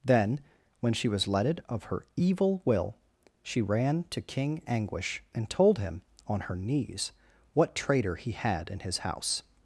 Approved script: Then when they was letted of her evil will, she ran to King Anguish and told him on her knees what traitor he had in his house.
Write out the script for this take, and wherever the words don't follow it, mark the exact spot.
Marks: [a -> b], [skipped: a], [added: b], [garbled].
Then when [they -> she] was letted of her evil will, she ran to King Anguish and told him on her knees what traitor he had in his house.